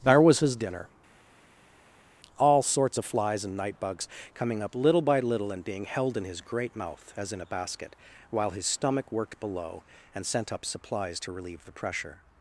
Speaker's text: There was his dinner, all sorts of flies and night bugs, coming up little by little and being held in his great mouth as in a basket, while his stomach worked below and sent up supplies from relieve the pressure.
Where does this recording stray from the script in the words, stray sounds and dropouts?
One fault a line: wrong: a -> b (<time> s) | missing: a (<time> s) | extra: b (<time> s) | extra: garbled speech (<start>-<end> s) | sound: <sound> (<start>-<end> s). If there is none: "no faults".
wrong: from -> to (11.2 s)